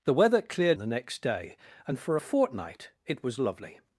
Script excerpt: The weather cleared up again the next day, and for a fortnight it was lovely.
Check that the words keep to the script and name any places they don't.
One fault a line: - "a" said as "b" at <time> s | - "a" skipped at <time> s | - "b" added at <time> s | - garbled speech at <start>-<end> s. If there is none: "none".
- "up again" skipped at 0.8 s